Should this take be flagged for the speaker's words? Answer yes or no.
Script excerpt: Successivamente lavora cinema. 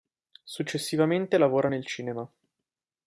yes